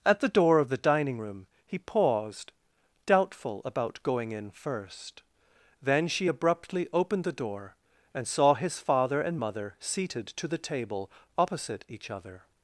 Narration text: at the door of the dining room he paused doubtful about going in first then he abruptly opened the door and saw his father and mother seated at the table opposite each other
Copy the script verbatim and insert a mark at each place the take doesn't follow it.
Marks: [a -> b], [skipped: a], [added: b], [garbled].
at the door of the dining room he paused doubtful about going in first then [he -> she] abruptly opened the door and saw his father and mother seated [at -> to] the table opposite each other